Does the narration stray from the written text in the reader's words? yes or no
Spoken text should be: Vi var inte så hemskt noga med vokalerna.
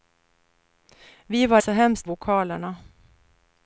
yes